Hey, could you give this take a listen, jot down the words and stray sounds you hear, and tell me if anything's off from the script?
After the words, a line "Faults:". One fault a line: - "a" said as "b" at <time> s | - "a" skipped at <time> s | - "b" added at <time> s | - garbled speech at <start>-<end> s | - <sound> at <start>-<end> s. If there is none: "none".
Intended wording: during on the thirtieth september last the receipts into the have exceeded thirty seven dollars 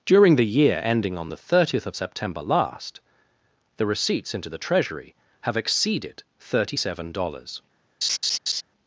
during the year ending on the thirtieth of september last the receipts into the treasury have exceeded thirty seven dollars
Faults:
- "the year ending" added at 0.3 s
- "of" added at 1.9 s
- "treasury" added at 4.6 s
- laugh at 8.0-8.6 s